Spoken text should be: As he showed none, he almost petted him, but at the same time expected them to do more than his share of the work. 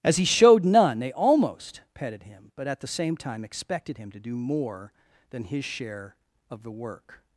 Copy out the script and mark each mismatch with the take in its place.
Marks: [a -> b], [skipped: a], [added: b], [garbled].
As he showed none, [he -> they] almost petted him, but at the same time expected [them -> him] to do more than his share of the work.